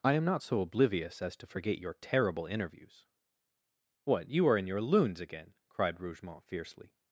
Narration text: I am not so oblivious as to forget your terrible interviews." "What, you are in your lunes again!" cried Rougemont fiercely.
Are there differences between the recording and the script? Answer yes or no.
no